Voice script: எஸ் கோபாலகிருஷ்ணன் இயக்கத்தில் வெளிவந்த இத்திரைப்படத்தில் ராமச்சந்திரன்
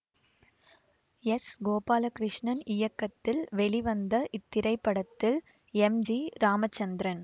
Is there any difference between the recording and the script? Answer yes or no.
yes